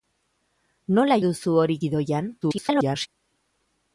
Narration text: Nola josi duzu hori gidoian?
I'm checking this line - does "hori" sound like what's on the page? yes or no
yes